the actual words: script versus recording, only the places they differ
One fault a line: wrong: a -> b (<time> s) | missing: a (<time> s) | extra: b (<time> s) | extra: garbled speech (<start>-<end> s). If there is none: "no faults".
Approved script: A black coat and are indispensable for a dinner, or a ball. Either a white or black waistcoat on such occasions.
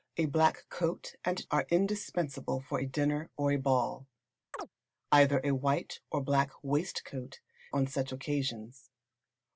no faults